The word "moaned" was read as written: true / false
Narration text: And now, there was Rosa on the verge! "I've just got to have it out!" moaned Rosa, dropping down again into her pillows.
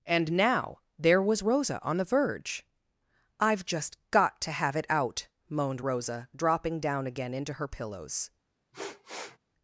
true